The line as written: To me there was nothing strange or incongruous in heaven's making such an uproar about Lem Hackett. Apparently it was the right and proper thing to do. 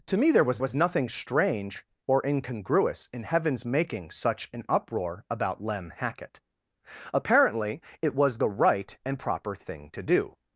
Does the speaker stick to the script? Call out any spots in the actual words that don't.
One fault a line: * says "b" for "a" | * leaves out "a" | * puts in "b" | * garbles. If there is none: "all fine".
* puts in "was"